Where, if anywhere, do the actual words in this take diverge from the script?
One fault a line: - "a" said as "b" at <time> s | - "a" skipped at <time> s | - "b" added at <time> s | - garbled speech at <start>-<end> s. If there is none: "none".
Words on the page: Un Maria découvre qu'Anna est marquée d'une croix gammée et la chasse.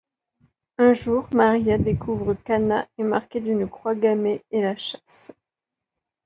- "jour" added at 0.9 s